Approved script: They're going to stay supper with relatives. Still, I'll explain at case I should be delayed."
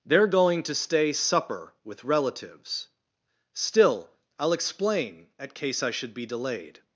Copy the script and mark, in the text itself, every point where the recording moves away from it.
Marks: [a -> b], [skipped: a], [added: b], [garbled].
They're going to stay supper with relatives. Still, I'll explain at case I should be delayed."